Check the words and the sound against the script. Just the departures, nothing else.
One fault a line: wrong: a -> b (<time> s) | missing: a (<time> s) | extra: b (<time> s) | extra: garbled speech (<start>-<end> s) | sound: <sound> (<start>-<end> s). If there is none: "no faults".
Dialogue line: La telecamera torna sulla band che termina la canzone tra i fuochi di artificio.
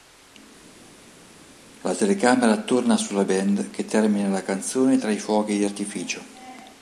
no faults